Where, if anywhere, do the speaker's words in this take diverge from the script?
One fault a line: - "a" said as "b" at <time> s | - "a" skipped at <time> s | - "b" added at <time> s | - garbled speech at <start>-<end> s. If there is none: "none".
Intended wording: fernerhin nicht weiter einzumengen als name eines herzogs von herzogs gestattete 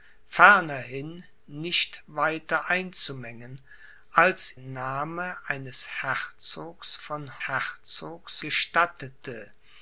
none